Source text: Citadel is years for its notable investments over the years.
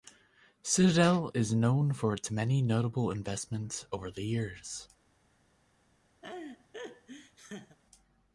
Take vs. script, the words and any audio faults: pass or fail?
fail